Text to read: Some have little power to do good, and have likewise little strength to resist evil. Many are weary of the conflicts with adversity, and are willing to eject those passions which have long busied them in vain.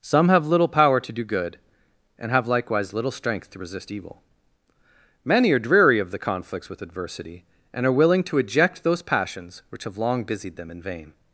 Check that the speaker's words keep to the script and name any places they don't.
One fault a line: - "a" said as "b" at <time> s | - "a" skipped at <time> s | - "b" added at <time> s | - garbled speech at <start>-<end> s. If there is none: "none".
- "weary" said as "dreary" at 5.6 s